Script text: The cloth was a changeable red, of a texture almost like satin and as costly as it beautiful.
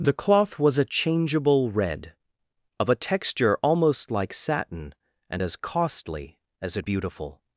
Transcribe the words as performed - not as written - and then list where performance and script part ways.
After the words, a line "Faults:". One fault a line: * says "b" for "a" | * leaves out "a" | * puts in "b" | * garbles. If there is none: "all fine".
The cloth was a changeable red, of a texture almost like satin and as costly as it beautiful.
Faults:
all fine